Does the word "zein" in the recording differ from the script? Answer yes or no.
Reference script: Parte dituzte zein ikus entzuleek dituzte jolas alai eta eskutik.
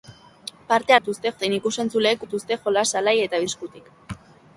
no